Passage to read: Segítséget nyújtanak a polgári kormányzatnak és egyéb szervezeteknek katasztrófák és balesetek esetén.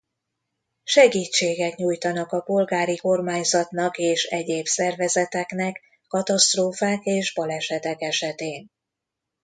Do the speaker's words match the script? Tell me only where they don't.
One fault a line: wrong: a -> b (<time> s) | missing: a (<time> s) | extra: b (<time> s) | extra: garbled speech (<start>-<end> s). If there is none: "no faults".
no faults